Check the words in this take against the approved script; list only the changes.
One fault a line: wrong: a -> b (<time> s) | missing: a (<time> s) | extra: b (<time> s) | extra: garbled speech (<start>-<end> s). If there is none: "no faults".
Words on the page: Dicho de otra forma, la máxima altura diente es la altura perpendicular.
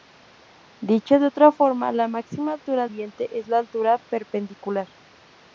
no faults